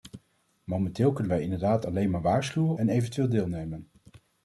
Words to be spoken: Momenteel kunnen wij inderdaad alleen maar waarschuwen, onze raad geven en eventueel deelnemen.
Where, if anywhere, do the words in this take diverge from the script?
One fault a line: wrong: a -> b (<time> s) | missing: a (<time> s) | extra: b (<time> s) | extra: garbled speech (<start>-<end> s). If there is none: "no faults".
missing: onze raad geven (2.8 s)